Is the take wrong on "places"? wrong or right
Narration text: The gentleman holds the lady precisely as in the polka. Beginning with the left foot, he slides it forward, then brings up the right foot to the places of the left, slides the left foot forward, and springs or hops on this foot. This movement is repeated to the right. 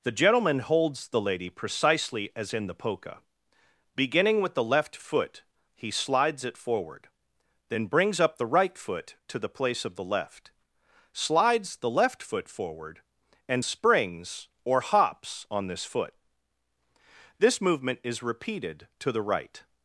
wrong